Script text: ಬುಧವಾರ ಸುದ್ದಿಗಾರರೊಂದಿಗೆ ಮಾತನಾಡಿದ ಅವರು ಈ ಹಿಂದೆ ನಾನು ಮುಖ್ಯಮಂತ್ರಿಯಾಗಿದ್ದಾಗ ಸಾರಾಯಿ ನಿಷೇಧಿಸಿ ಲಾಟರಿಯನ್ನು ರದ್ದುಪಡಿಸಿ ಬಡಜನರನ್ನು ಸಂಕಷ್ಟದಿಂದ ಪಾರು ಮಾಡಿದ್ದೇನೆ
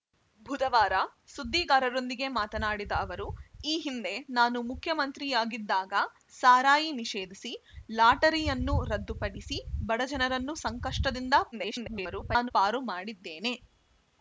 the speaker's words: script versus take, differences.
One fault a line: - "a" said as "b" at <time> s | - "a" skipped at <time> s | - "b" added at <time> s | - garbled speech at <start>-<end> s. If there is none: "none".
- garbled speech at 11.5-12.5 s